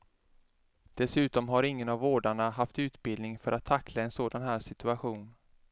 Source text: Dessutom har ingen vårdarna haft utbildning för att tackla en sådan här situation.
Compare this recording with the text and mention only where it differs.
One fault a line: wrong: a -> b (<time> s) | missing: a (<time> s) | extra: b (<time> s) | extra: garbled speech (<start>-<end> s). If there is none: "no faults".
extra: av (1.9 s)